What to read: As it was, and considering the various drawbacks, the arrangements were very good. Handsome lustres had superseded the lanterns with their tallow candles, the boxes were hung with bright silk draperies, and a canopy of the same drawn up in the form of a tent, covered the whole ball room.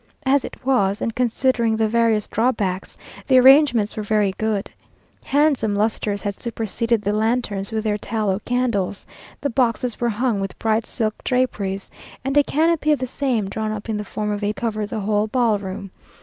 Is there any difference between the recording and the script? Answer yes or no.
yes